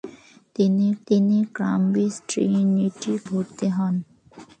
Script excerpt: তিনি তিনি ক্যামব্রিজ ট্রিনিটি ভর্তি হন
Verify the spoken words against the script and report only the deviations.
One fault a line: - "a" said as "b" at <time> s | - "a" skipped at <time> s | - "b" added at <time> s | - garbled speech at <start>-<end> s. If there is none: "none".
none